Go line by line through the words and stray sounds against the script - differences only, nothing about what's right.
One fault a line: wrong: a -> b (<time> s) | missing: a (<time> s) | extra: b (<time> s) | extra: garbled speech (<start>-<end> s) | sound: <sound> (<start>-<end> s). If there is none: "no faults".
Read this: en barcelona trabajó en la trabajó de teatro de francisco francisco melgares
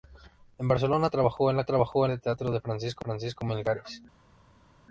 no faults